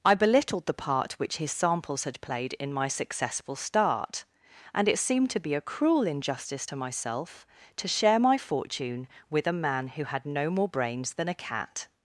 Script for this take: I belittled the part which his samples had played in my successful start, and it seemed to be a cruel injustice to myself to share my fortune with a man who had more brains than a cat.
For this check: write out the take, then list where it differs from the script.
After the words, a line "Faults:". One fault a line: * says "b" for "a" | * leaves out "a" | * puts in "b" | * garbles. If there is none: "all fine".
I belittled the part which his samples had played in my successful start, and it seemed to be a cruel injustice to myself to share my fortune with a man who had no more brains than a cat.
Faults:
* puts in "no"